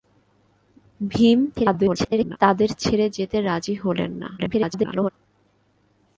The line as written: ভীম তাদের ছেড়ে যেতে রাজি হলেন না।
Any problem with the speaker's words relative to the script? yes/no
yes